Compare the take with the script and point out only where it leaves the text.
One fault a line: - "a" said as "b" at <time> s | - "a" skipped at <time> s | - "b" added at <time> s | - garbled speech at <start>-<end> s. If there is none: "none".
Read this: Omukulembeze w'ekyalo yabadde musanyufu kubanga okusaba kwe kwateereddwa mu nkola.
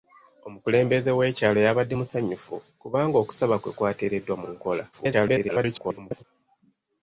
- garbled speech at 4.9-6.2 s